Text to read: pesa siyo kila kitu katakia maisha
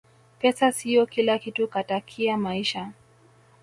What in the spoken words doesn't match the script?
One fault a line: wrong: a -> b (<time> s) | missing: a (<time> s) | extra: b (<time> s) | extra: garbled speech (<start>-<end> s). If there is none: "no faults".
no faults